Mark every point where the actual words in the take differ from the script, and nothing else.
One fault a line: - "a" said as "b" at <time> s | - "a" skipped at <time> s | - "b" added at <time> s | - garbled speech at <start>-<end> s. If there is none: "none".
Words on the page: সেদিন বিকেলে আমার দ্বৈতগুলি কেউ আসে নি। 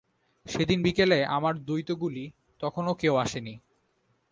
- "তখনো" added at 2.6 s